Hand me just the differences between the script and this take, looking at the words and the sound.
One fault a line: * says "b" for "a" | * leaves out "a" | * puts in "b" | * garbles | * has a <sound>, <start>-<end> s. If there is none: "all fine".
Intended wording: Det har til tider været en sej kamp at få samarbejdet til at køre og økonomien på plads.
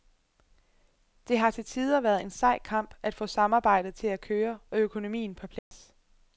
* has a dropout, 5.6-5.7 s